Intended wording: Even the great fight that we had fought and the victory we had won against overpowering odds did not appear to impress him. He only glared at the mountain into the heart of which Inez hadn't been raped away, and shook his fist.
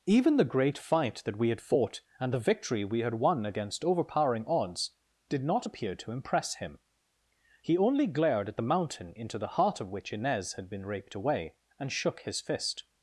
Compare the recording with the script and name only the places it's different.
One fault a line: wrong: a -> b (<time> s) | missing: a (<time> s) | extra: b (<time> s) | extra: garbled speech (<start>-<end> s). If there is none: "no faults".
wrong: hadn't -> had (10.5 s)